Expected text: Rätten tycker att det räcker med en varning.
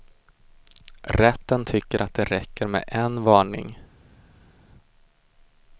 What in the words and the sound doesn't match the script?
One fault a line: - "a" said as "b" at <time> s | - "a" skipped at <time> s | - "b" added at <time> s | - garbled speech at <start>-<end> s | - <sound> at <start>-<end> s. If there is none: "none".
none